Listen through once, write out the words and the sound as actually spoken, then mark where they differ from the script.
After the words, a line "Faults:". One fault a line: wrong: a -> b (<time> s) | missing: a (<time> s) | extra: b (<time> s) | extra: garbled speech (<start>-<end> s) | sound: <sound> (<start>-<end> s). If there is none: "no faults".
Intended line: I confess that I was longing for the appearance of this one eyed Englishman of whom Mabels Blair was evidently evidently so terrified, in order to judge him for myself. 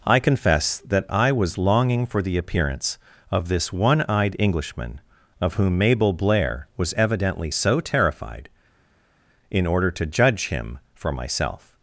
I confess that I was longing for the appearance of this one eyed Englishman of whom Mabel Blair was evidently so terrified, in order to judge him for myself.
Faults:
wrong: Mabels -> Mabel (5.8 s)
missing: evidently (7.5 s)